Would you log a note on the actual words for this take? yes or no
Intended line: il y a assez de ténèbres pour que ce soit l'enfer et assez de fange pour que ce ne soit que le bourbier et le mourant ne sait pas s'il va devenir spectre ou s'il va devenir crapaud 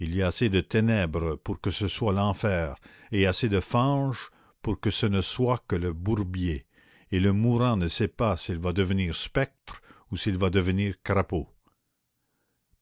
no